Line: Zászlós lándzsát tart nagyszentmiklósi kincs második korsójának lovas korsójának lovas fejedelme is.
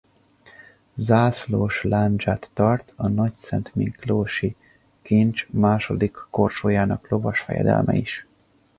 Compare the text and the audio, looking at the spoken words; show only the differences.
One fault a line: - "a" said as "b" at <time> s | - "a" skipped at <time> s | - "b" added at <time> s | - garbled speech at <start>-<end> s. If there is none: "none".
- "a" added at 3.0 s
- "korsójának lovas" skipped at 7.4 s